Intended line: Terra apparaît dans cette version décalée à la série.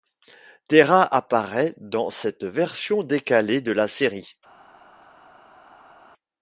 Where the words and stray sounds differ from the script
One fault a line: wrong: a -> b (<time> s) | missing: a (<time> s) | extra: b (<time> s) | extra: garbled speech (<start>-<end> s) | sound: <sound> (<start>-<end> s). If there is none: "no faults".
wrong: à -> de (3.6 s)